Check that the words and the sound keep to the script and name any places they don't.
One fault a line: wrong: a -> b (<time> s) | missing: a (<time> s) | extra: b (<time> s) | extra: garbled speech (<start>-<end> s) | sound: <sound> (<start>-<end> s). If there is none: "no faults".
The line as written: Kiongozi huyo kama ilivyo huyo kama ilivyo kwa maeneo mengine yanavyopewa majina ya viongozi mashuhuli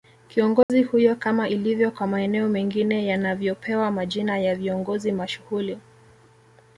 sound: dropout (0.6-0.7 s)
missing: huyo kama ilivyo (1.9 s)